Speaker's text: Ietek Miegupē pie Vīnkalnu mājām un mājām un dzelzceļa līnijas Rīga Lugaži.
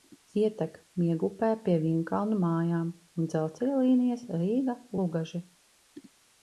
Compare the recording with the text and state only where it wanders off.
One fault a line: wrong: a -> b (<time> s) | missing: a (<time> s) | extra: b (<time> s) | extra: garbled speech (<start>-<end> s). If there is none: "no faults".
missing: mājām un (3.3 s)